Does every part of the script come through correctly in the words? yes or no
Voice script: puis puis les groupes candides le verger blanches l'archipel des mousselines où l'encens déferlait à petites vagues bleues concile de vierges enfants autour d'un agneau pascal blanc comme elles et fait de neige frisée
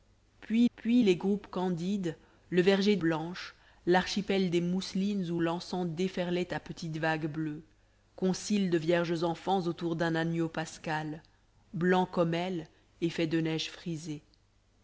yes